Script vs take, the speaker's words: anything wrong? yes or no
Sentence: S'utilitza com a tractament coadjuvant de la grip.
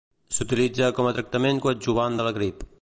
no